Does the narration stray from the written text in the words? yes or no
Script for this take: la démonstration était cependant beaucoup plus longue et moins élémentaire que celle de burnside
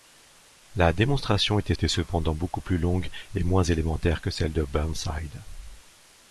yes